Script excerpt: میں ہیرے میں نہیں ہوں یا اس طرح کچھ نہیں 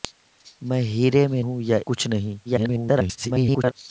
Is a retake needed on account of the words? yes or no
yes